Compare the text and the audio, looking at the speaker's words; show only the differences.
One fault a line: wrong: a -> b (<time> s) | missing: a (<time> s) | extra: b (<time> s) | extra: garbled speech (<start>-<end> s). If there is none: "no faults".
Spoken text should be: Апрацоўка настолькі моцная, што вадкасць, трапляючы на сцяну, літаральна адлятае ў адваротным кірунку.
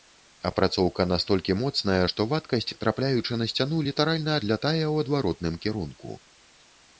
no faults